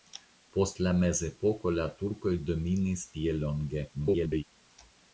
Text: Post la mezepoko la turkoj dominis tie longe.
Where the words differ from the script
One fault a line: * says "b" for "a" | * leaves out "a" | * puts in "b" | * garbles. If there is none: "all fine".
* garbles